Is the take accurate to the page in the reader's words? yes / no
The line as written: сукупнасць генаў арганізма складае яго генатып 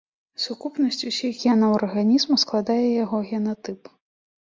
no